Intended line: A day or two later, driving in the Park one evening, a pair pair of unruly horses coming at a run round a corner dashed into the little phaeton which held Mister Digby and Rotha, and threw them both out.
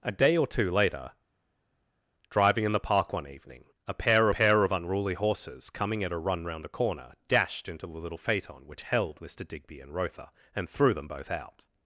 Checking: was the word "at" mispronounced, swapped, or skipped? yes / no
no